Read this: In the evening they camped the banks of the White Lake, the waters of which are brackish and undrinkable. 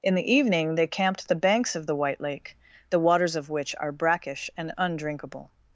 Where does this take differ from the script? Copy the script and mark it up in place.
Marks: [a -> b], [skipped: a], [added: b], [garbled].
In the evening they camped the banks of the White Lake, the waters of which are brackish and undrinkable.